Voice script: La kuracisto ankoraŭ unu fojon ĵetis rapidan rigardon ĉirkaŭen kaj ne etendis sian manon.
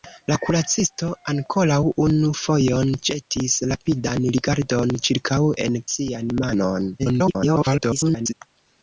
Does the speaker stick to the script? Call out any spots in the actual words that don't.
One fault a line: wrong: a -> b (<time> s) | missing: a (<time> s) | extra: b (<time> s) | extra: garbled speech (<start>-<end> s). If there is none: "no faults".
missing: kaj ne etendis (5.8 s)
extra: garbled speech (7.0-8.3 s)